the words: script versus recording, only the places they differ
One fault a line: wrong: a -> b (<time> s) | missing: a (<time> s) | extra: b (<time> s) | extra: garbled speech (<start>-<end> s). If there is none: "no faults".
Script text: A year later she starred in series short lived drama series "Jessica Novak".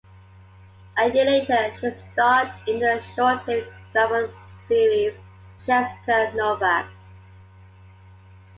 wrong: series -> the (2.8 s)